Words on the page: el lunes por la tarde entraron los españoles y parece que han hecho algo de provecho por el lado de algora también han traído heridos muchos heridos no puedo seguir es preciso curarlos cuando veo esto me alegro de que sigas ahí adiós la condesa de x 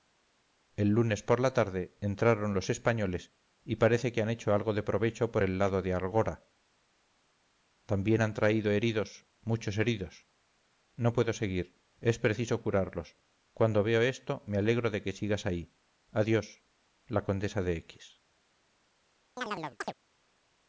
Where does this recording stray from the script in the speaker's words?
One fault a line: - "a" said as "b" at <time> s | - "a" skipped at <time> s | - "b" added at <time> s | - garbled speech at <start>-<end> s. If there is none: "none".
none